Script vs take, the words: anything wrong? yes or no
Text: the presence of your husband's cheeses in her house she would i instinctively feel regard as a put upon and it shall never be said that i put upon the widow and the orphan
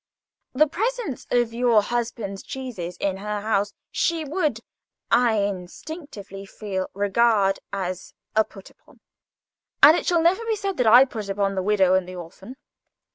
no